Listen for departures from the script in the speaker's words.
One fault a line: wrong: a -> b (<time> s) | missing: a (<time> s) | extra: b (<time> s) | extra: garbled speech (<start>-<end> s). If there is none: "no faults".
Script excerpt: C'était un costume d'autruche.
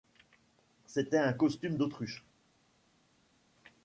no faults